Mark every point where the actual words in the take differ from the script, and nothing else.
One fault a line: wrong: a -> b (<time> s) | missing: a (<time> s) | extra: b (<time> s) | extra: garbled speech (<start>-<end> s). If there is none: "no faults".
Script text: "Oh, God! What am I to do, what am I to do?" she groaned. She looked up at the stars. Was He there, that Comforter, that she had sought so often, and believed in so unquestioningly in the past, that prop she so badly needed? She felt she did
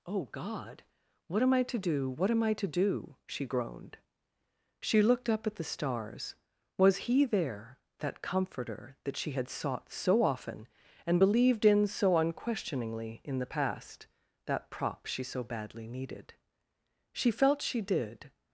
no faults